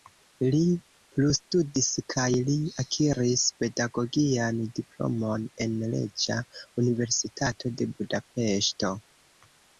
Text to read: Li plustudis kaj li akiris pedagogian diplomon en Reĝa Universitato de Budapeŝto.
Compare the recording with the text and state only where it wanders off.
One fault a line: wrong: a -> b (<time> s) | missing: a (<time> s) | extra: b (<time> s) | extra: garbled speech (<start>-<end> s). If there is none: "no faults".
no faults